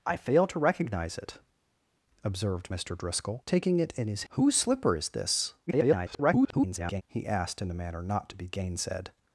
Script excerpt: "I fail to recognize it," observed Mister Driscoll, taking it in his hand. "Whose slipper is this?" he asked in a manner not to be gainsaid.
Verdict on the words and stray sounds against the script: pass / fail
fail